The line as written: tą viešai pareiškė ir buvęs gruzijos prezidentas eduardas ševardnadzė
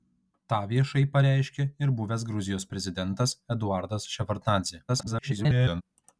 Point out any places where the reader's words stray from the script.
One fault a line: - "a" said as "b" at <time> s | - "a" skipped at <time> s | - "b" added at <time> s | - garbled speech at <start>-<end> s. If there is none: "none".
- garbled speech at 4.9-5.8 s